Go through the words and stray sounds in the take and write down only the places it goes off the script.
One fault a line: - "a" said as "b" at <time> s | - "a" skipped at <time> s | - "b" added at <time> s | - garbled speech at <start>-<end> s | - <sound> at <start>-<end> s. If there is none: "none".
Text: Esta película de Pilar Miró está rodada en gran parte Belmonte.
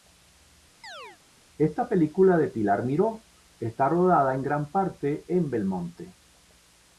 - chirp at 0.8-1.2 s
- "en" added at 5.3 s